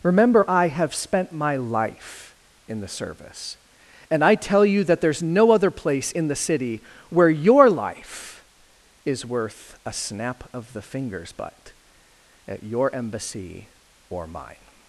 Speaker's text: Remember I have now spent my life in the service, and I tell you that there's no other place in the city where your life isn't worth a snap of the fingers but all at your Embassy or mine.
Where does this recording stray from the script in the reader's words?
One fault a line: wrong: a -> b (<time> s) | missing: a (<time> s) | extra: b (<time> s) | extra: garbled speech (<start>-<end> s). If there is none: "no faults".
missing: now (0.9 s)
wrong: isn't -> is (9.0 s)
missing: all (11.7 s)